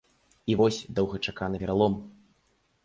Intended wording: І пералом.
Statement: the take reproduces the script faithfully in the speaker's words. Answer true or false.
false